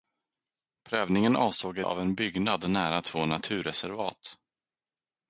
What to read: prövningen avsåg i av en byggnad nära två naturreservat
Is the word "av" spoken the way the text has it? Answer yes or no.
yes